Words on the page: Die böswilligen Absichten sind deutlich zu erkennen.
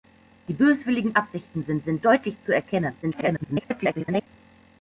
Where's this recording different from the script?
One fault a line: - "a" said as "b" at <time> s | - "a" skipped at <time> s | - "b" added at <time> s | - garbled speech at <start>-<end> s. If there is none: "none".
- "sind" added at 1.8 s
- garbled speech at 3.0-4.3 s